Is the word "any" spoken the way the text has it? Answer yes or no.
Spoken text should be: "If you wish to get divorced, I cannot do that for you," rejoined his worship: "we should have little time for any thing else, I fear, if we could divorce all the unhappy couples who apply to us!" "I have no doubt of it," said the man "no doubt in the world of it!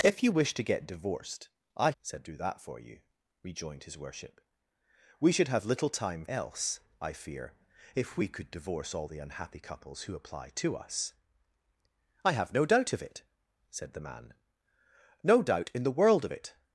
no